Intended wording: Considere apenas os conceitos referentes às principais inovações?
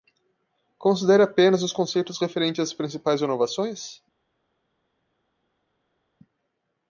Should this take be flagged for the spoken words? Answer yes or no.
no